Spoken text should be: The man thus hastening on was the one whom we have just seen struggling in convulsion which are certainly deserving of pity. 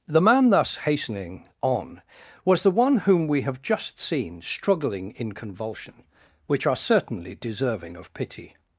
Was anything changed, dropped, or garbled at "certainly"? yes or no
no